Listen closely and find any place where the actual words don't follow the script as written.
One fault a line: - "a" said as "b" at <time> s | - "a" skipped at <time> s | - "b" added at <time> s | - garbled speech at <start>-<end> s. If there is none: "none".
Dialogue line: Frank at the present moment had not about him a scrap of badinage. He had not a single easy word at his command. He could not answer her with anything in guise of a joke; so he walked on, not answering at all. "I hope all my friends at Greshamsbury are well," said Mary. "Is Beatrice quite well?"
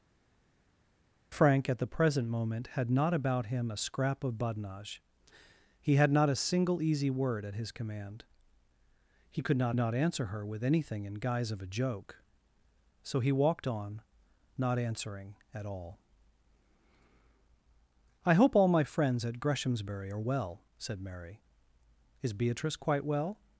- "not" added at 9.7 s